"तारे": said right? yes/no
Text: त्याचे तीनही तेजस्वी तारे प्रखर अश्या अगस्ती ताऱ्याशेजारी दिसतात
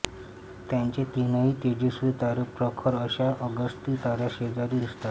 yes